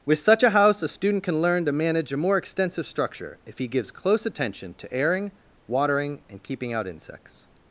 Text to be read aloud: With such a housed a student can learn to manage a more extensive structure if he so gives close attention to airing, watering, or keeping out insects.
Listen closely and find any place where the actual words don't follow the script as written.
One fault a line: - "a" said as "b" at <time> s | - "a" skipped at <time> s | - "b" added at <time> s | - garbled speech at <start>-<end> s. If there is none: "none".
- "housed" said as "house" at 0.5 s
- "so" skipped at 3.7 s
- "or" said as "and" at 6.3 s